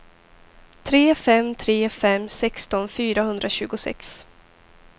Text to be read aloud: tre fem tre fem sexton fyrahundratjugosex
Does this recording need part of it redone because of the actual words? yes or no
no